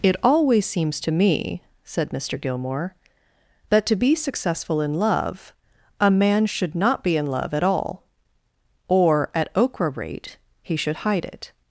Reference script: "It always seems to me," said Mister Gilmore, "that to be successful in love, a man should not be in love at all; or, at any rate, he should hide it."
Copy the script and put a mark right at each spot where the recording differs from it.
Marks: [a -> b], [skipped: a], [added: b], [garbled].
"It always seems to me," said Mister Gilmore, "that to be successful in love, a man should not be in love at all; or, at [any -> okra] rate, he should hide it."